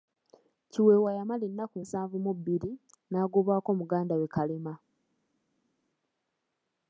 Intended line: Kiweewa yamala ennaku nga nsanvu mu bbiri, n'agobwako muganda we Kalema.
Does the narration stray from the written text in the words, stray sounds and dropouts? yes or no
yes